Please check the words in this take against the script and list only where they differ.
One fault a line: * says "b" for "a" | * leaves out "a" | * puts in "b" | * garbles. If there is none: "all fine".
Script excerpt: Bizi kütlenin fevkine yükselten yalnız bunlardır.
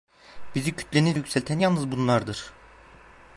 * leaves out "fevkine"